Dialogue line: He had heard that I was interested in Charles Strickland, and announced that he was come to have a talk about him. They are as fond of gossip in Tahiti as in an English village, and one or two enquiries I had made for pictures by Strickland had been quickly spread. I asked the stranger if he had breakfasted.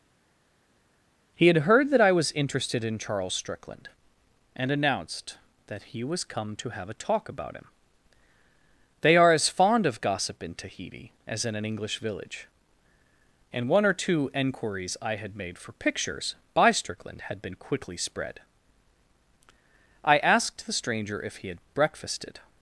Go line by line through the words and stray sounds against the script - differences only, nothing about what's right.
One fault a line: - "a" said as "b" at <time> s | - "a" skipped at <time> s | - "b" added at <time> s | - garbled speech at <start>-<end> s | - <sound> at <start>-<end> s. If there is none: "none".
none